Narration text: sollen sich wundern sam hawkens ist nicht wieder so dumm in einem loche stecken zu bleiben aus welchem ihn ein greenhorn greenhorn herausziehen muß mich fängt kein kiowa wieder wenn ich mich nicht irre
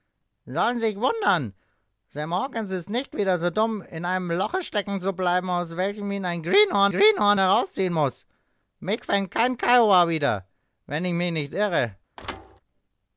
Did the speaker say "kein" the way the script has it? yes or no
yes